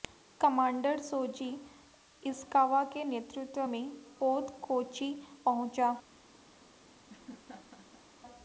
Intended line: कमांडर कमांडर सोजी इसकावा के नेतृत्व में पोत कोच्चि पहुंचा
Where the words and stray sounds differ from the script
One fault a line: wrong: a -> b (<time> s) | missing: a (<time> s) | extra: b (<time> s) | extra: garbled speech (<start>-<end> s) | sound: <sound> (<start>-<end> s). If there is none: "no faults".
missing: कमांडर (1.0 s)
sound: laugh (7.1-8.1 s)